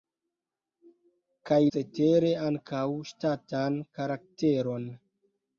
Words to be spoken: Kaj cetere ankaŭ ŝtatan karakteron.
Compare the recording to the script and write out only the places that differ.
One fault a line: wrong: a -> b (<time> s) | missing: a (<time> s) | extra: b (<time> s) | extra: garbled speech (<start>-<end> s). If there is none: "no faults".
no faults